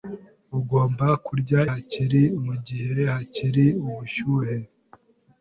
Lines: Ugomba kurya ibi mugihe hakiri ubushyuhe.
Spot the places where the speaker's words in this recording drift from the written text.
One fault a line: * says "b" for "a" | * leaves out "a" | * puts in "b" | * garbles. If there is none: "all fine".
* says "hakiri" for "ibi"